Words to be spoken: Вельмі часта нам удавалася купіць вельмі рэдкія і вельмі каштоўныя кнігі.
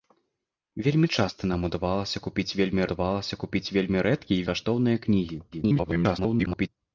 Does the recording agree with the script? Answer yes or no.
no